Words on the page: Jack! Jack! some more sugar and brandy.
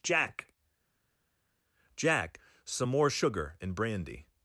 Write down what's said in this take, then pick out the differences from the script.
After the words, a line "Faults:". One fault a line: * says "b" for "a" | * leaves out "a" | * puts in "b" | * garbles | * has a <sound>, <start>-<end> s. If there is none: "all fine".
Jack! Jack! some more sugar and brandy.
Faults:
all fine